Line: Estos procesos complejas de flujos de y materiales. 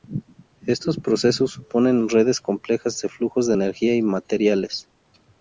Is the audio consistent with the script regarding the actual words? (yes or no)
no